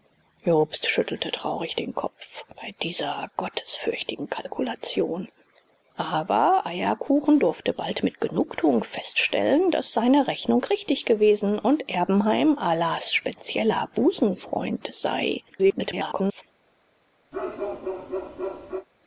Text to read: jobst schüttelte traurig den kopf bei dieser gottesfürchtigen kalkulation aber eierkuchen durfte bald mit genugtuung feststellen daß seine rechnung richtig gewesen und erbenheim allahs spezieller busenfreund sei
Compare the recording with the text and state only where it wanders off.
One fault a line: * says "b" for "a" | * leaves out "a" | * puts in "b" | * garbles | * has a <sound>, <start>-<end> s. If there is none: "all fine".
* garbles
* has a bark, 17.3-18.9 s